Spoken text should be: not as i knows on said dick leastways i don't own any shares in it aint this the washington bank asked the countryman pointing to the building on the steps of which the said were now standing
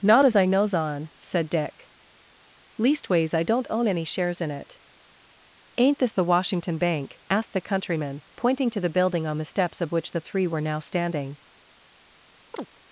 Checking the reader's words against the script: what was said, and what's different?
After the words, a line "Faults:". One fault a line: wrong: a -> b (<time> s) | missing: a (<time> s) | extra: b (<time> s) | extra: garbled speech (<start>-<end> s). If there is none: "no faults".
not as i knows on said dick leastways i don't own any shares in it aint this the washington bank asked the countryman pointing to the building on the steps of which the three were now standing
Faults:
wrong: said -> three (10.2 s)